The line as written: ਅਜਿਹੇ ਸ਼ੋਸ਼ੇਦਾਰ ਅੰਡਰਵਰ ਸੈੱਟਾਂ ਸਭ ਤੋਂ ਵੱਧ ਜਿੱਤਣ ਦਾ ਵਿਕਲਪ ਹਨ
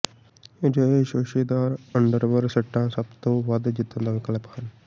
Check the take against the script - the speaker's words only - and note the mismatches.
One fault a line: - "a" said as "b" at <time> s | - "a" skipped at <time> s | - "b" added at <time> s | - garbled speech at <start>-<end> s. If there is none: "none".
none